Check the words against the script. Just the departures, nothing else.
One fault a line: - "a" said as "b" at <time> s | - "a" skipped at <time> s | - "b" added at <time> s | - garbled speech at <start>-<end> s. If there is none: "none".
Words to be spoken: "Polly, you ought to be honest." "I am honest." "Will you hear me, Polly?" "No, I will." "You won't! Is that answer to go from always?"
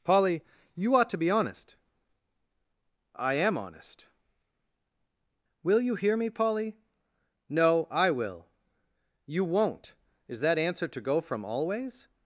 none